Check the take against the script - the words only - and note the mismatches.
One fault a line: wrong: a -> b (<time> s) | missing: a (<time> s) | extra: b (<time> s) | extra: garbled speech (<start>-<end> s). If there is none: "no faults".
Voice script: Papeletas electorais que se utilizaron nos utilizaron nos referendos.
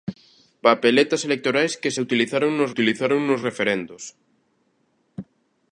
no faults